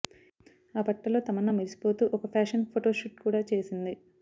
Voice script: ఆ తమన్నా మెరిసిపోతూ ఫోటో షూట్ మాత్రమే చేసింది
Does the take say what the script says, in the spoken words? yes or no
no